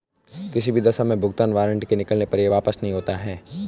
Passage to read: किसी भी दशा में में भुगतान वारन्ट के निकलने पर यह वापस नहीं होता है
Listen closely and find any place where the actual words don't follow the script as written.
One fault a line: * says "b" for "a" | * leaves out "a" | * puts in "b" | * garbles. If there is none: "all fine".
* leaves out "में"